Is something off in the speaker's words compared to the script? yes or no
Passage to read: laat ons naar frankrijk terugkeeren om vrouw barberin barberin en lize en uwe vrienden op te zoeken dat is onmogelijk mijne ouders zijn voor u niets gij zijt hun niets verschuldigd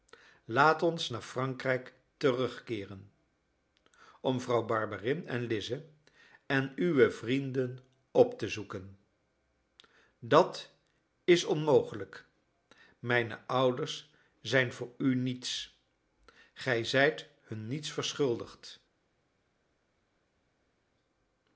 yes